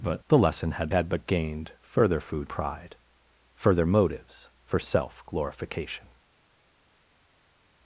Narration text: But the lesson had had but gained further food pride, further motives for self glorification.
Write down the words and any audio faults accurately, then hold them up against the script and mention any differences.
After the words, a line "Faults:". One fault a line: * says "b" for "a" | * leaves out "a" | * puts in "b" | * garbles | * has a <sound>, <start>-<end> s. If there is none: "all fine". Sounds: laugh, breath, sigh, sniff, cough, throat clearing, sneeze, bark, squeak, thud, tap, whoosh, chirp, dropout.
But the lesson had had but gained further food pride, further motives for self glorification.
Faults:
all fine